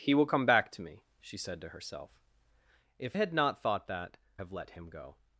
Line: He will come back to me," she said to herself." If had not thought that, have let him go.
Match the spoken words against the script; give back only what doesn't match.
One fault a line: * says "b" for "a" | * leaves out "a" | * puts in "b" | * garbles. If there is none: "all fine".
all fine